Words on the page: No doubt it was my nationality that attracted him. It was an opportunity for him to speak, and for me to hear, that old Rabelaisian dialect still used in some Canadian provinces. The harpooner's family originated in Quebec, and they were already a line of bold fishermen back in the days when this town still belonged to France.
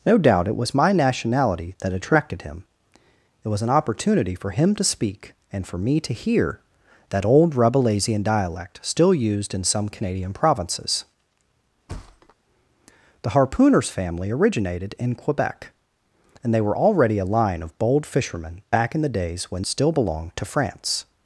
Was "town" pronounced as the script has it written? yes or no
no